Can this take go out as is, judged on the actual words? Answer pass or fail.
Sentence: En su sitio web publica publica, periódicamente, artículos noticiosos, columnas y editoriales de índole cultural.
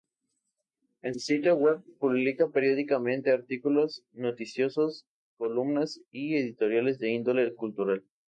fail